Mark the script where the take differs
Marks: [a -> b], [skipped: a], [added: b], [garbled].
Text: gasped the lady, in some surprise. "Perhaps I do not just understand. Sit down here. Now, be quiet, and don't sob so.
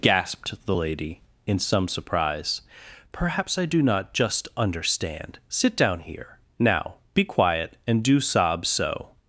gasped the lady, in some surprise. "Perhaps I do not just understand. Sit down here. Now, be quiet, and [don't -> do] sob so.